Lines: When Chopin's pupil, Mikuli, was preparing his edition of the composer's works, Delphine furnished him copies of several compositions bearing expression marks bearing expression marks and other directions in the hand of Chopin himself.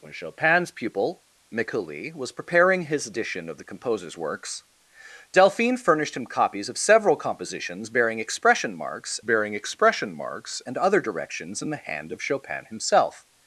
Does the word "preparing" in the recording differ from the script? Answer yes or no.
no